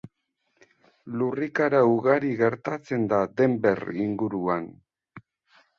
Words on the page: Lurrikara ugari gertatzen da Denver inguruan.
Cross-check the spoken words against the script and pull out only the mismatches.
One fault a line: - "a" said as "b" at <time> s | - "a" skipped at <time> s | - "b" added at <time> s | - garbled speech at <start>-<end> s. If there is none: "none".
none